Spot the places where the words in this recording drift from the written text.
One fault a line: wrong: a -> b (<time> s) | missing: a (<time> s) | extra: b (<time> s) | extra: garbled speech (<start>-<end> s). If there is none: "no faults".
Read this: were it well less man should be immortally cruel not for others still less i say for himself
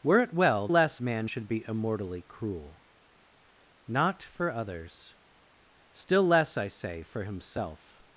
no faults